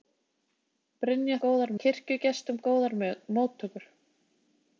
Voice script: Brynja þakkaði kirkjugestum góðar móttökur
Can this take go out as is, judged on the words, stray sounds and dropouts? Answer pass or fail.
fail